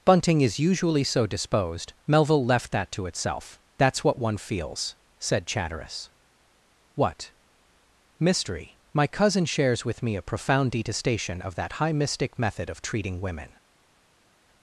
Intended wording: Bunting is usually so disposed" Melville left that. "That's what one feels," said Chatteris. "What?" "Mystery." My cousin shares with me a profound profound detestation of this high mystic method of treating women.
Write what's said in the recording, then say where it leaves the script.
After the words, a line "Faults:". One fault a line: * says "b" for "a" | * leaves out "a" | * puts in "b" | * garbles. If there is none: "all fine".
Bunting is usually so disposed" Melville left that to itself. "That's what one feels," said Chatteris. "What?" "Mystery." My cousin shares with me a profound detestation of that high mystic method of treating women.
Faults:
* puts in "to itself"
* leaves out "profound"
* says "that" for "this"